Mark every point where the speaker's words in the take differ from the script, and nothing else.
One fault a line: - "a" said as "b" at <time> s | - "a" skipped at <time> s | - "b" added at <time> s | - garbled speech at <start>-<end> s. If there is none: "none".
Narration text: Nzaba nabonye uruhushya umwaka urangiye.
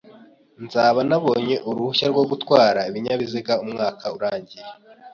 - "rwo gutwara ibinyabiziga" added at 2.1 s